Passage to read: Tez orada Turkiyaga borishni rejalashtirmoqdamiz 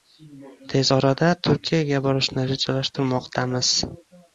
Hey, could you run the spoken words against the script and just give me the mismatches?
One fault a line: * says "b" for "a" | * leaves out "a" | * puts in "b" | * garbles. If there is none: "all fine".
all fine